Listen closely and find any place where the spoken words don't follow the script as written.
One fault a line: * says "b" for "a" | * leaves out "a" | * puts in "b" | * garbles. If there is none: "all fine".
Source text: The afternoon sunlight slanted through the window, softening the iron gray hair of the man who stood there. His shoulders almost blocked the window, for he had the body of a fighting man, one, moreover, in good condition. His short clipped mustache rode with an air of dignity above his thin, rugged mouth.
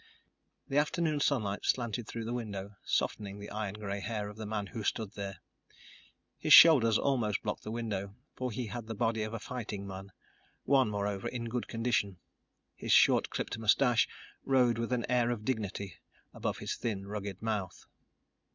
all fine